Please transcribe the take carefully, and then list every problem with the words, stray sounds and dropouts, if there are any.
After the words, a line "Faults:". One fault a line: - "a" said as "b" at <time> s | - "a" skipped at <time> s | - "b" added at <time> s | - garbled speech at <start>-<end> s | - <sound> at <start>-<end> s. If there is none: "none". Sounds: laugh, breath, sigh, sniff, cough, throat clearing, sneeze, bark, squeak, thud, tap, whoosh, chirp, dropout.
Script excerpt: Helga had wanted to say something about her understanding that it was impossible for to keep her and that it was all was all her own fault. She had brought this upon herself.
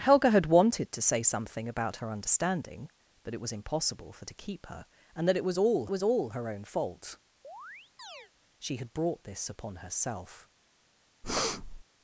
Helga had wanted to say something about her understanding that it was impossible for to keep her and that it was all was all her own fault. She had brought this upon herself.
Faults:
- chirp at 7.4-8.3 s
- breath at 11.2-11.8 s